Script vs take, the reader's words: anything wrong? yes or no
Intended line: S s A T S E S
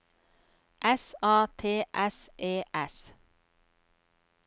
yes